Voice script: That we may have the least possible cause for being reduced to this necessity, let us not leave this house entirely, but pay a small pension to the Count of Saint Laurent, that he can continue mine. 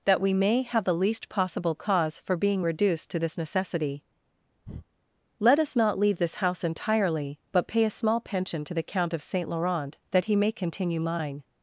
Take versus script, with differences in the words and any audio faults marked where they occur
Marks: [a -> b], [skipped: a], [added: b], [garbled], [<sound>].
That we may have the least possible cause for being reduced to this necessity, [breath] let us not leave this house entirely, but pay a small pension to the Count of Saint Laurent, that he [can -> may] continue mine.